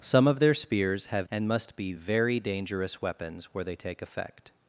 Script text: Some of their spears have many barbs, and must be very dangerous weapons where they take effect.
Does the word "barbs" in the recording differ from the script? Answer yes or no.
yes